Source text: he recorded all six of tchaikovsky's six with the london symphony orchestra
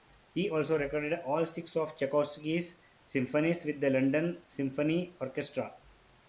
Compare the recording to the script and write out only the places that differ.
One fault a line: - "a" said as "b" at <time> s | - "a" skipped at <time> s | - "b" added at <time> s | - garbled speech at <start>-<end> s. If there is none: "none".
- "also" added at 0.5 s
- "six" said as "symphonies" at 3.0 s